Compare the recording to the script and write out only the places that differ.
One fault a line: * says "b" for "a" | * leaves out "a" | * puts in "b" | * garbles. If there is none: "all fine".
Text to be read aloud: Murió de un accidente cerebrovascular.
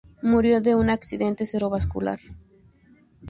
all fine